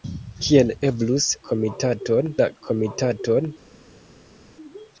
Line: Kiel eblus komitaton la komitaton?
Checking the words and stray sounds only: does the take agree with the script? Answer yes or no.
yes